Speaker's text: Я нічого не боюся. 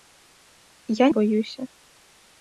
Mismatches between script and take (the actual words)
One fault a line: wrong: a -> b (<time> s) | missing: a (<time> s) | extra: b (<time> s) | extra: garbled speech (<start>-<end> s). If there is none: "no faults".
missing: нічого не (1.1 s)